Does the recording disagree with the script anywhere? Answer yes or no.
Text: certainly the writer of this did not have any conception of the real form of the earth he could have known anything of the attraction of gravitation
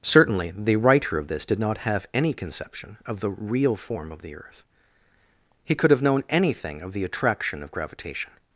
no